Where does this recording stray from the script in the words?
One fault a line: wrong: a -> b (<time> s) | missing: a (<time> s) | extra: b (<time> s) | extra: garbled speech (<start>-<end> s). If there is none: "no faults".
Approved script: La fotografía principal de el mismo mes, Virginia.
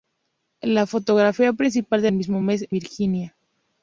no faults